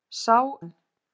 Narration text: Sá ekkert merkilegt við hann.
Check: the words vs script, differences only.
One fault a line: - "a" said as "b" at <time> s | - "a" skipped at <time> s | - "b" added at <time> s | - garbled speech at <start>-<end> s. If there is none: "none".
- "ekkert merkilegt við" skipped at 0.4 s